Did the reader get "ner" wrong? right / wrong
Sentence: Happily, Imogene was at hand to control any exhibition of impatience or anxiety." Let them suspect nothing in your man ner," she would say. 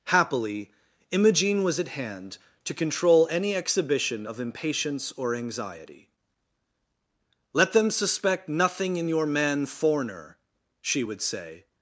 wrong